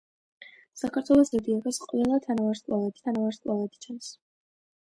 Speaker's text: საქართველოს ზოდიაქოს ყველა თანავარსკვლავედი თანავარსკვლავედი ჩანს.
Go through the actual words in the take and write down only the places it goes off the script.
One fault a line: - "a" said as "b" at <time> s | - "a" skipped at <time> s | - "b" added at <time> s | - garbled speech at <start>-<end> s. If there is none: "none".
none